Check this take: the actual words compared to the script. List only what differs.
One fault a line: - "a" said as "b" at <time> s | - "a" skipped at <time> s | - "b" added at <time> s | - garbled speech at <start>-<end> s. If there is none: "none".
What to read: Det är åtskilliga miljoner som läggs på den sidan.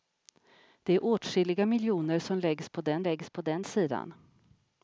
- "läggs på den" added at 3.0 s